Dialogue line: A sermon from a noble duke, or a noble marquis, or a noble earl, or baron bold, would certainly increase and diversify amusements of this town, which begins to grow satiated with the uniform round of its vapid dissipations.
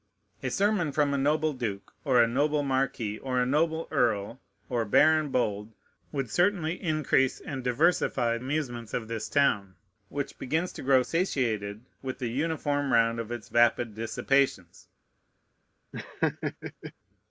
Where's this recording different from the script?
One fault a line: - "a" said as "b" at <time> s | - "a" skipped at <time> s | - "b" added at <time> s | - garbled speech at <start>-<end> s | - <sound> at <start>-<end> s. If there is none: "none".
- laugh at 15.9-16.9 s